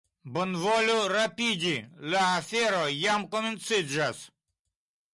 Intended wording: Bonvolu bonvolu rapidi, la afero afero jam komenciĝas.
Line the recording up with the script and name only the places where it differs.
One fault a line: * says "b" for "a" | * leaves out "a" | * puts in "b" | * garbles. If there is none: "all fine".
* leaves out "bonvolu"
* leaves out "afero"